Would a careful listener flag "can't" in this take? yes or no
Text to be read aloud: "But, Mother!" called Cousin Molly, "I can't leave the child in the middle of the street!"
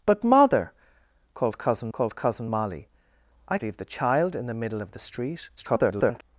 yes